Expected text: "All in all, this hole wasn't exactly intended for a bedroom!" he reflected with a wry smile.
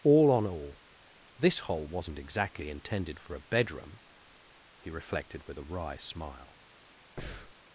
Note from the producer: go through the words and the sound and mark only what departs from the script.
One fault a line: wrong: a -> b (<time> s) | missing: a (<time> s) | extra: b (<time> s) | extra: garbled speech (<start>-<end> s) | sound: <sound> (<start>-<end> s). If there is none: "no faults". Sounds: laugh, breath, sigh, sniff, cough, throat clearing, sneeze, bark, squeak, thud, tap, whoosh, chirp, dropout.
wrong: in -> on (0.3 s)
sound: breath (7.2-7.5 s)